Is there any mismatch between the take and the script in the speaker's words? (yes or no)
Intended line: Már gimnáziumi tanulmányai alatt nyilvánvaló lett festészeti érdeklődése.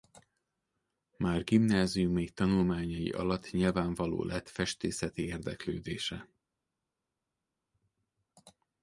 no